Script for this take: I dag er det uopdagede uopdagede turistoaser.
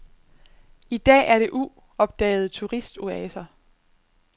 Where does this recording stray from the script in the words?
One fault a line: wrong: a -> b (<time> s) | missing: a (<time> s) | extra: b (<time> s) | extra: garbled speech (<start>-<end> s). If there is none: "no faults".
missing: uopdagede (2.5 s)